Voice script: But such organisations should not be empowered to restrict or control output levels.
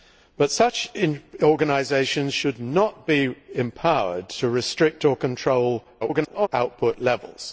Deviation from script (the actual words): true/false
true